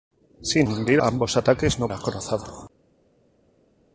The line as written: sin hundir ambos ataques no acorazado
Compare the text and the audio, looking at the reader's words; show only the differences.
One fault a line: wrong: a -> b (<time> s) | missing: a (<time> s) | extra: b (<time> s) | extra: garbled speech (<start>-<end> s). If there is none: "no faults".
no faults